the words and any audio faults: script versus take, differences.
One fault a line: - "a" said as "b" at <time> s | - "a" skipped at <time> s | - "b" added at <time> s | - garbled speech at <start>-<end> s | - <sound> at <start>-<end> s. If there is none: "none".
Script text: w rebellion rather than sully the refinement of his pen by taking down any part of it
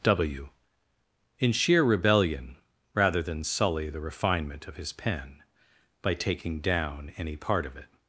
- "in sheer" added at 1.4 s